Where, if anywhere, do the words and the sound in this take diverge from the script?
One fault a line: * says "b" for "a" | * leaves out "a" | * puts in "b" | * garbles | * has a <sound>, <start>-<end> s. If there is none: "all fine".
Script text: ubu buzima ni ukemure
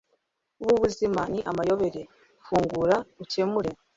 * puts in "amayobera fungura"